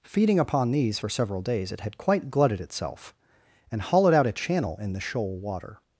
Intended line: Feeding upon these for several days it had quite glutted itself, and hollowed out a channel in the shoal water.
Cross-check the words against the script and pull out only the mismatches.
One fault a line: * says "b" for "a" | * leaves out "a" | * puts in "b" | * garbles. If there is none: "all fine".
all fine